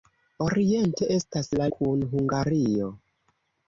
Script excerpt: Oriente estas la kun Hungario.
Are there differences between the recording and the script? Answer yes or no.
no